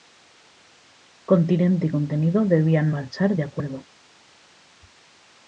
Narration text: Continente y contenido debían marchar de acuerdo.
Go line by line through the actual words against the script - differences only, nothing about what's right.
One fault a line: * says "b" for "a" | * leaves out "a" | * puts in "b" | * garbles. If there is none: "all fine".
all fine